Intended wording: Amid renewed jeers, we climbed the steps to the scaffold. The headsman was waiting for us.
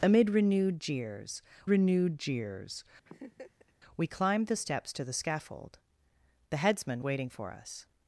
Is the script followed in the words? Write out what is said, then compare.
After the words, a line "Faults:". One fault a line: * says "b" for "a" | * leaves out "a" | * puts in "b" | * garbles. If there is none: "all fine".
Amid renewed jeers renewed jeers, we climbed the steps to the scaffold. The headsman waiting for us.
Faults:
* puts in "renewed jeers"
* leaves out "was"